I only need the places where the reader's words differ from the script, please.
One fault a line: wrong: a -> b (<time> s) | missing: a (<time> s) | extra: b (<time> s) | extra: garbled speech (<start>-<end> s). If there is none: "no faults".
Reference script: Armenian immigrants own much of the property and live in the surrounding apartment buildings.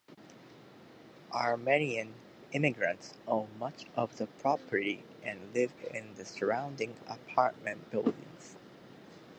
no faults